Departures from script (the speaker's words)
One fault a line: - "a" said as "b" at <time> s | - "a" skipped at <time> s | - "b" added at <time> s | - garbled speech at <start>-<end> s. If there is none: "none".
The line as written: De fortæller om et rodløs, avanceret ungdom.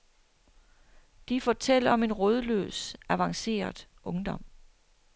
- "et" said as "en" at 2.0 s